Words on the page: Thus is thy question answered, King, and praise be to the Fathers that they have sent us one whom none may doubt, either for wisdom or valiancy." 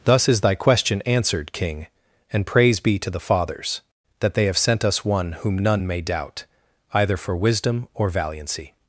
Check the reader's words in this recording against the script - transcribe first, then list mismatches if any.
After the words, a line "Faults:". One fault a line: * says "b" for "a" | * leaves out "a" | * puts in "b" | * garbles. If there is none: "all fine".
Thus is thy question answered, King, and praise be to the Fathers that they have sent us one whom none may doubt, either for wisdom or valiancy."
Faults:
all fine